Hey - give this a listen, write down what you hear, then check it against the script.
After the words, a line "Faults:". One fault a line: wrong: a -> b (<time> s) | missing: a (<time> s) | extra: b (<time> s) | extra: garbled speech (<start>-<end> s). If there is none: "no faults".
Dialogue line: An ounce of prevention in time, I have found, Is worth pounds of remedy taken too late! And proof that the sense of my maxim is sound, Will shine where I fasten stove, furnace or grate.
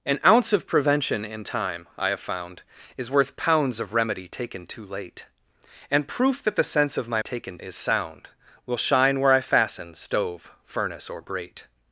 An ounce of prevention in time, I have found, Is worth pounds of remedy taken too late! And proof that the sense of my taken is sound, Will shine where I fasten stove, furnace or grate.
Faults:
wrong: maxim -> taken (7.2 s)